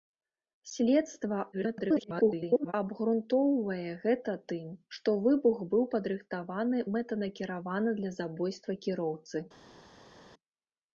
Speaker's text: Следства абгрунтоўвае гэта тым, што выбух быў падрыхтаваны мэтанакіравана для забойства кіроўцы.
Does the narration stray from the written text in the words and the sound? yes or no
yes